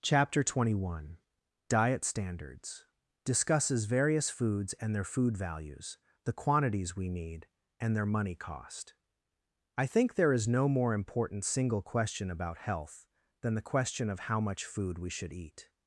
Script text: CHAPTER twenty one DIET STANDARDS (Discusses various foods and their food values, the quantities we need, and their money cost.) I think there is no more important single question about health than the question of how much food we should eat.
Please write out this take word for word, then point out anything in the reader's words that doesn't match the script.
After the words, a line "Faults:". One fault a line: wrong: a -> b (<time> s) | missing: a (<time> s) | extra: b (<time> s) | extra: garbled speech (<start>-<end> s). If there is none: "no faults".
CHAPTER twenty one DIET STANDARDS (Discusses various foods and their food values, the quantities we need, and their money cost.) I think there is no more important single question about health than the question of how much food we should eat.
Faults:
no faults